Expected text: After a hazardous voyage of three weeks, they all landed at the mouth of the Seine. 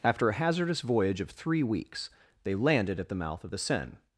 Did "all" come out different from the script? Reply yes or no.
yes